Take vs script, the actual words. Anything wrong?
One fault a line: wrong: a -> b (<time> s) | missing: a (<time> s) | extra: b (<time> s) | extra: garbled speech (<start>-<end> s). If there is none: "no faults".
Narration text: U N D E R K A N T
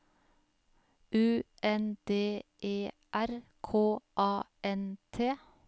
no faults